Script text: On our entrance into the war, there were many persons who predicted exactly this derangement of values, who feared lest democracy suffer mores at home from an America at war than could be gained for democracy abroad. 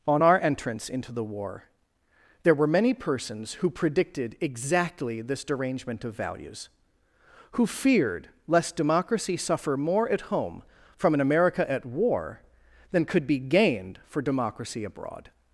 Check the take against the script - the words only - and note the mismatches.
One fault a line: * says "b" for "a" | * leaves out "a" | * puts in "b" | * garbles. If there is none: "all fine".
* says "more" for "mores"